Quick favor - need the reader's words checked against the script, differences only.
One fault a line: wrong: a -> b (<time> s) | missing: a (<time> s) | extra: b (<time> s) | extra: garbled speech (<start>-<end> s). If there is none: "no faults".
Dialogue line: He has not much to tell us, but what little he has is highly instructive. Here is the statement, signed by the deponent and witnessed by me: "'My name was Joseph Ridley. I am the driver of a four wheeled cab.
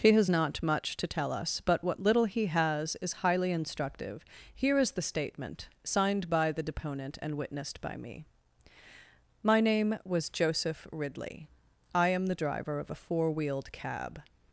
no faults